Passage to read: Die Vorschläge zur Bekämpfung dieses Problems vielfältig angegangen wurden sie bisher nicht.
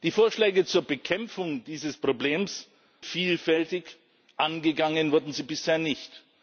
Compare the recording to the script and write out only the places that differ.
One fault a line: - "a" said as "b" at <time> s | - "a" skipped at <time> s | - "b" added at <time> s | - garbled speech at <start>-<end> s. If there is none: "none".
none